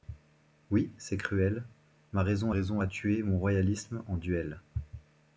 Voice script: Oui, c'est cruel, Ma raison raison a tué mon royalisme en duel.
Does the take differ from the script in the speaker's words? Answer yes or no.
no